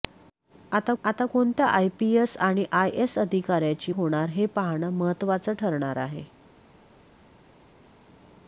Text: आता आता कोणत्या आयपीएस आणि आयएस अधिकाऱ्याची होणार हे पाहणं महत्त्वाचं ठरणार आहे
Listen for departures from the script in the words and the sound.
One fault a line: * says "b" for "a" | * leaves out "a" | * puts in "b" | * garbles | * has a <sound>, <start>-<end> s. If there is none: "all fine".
all fine